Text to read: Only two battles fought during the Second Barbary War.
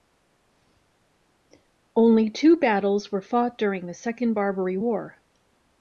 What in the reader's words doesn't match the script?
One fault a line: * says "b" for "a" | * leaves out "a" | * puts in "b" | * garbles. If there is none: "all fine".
* puts in "were"